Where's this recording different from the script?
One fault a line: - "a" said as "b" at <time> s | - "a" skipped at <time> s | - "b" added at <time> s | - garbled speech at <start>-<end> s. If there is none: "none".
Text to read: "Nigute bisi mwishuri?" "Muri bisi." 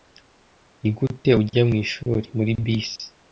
- "bisi" said as "ujya" at 1.4 s